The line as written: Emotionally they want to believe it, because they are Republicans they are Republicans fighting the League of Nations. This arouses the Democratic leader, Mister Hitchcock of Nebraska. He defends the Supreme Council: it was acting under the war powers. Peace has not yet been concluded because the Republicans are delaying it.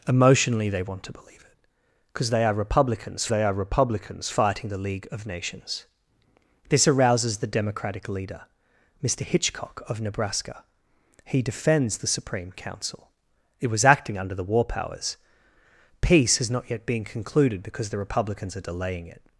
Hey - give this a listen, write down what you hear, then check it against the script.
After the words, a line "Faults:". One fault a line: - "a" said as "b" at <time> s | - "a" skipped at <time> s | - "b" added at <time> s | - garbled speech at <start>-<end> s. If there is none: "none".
Emotionally they want to believe it, because they are Republicans they are Republicans fighting the League of Nations. This arouses the Democratic leader, Mister Hitchcock of Nebraska. He defends the Supreme Council: it was acting under the war powers. Peace has not yet been concluded because the Republicans are delaying it.
Faults:
none